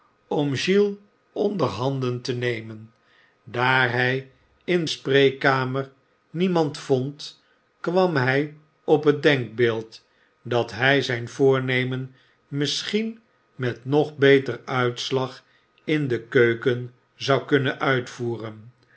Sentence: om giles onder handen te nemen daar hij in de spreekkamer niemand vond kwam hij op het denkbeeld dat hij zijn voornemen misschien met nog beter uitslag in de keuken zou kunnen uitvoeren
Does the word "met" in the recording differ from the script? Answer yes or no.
no